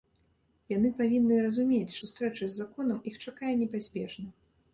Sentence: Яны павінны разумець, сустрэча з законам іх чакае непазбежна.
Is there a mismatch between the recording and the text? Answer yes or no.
no